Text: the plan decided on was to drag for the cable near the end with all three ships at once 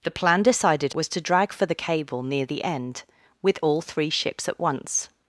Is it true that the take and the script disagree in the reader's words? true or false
true